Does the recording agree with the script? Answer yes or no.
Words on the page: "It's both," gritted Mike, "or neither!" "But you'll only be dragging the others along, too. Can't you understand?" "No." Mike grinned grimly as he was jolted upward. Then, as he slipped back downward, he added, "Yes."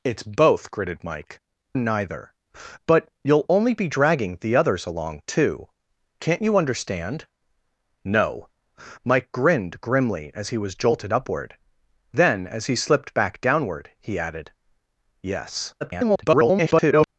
no